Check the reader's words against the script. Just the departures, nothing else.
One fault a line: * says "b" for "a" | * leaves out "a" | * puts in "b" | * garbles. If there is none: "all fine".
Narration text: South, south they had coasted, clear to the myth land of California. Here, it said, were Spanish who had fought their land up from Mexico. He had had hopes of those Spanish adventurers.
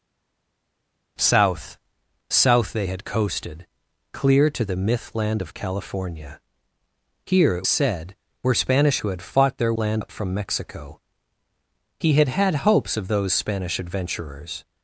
all fine